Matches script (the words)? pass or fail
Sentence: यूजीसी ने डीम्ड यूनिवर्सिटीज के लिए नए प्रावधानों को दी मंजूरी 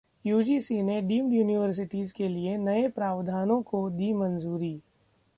pass